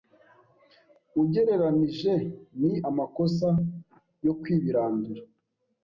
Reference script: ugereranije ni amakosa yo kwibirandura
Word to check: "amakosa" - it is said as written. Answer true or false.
true